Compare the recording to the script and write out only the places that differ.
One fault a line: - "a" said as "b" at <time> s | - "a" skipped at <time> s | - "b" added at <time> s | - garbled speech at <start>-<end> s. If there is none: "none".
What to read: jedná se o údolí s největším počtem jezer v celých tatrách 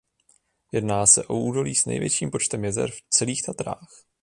none